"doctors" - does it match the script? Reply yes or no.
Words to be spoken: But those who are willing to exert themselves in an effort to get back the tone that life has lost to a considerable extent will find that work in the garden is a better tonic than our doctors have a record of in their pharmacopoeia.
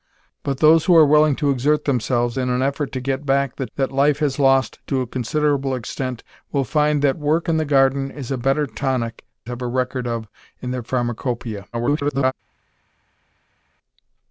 no